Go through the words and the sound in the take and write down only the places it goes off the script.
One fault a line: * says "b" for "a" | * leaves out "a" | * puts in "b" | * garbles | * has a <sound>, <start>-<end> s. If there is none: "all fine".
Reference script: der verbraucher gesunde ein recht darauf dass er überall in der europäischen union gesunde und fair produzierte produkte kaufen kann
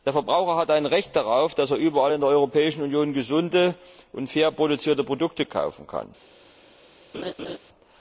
* says "hat" for "gesunde"
* has a laugh, 7.1-7.6 s